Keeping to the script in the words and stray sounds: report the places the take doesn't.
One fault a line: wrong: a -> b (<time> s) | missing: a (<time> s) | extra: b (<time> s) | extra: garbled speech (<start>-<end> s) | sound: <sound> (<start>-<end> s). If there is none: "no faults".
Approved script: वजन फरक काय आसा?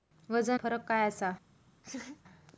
sound: laugh (1.8-2.2 s)